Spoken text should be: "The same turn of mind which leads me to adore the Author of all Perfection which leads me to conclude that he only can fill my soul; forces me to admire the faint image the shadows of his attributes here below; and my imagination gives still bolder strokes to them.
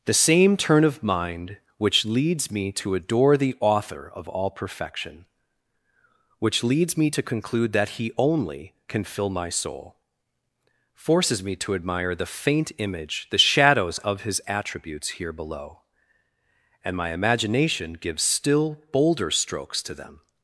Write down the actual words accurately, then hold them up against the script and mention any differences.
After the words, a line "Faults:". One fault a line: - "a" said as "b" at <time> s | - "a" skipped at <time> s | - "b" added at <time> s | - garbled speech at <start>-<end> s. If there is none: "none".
"The same turn of mind which leads me to adore the Author of all Perfection which leads me to conclude that he only can fill my soul; forces me to admire the faint image the shadows of his attributes here below; and my imagination gives still bolder strokes to them.
Faults:
none